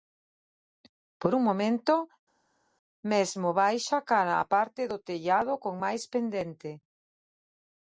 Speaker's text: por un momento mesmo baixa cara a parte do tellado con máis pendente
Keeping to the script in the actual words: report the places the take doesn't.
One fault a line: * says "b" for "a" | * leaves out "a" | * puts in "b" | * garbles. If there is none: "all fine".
all fine